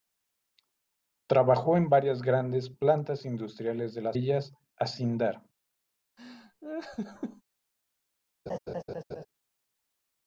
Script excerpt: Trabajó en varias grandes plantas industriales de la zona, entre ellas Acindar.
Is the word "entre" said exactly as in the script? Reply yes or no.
no